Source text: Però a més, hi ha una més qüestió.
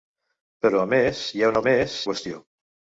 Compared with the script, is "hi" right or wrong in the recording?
right